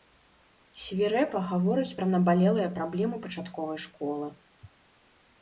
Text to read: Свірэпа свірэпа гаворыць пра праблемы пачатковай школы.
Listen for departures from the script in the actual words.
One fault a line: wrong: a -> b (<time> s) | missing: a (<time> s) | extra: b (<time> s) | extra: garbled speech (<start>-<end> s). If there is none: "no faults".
missing: свірэпа (1.4 s)
extra: набалелыя (2.1 s)